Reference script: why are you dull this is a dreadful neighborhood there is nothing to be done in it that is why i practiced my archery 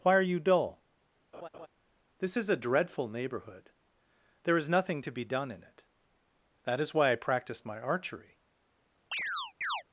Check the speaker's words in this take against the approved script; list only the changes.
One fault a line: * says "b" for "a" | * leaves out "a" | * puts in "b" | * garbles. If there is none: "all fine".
all fine